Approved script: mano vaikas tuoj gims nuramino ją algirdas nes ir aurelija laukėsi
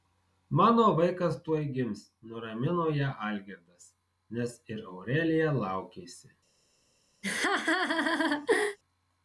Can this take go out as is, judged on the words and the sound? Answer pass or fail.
fail